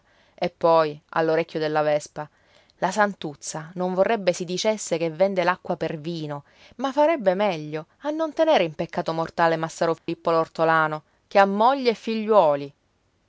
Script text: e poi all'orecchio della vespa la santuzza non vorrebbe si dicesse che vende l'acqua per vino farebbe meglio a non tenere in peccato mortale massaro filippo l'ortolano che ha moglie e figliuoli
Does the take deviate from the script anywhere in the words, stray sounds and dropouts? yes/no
yes